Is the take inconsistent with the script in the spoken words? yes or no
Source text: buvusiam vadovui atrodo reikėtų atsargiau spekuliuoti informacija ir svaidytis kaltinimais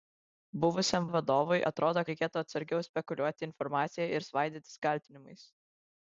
no